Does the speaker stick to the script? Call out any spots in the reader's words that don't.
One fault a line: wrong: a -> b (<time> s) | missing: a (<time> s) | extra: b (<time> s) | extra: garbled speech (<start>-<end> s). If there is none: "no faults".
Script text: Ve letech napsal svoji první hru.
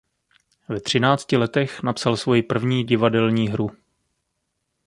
extra: třinácti (0.8 s)
extra: divadelní (2.8 s)